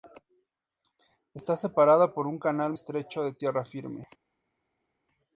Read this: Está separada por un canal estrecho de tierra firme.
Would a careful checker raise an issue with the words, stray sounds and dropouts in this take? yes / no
no